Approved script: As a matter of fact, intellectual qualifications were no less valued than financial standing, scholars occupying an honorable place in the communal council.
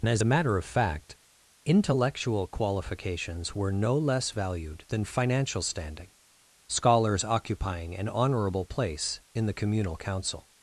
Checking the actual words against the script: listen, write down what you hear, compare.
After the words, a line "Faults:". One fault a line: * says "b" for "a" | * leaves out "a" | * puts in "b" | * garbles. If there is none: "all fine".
and As a matter of fact, intellectual qualifications were no less valued than financial standing, scholars occupying an honorable place in the communal council.
Faults:
* puts in "and"